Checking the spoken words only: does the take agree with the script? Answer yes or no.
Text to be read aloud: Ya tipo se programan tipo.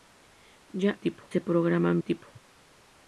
yes